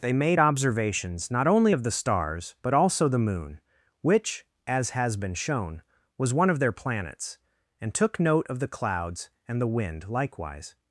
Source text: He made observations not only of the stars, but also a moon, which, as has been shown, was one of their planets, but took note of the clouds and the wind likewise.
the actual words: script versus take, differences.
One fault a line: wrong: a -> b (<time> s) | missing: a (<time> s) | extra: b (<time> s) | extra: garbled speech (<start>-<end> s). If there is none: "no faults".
wrong: He -> They (0.0 s)
wrong: a -> the (3.1 s)
wrong: but -> and (7.8 s)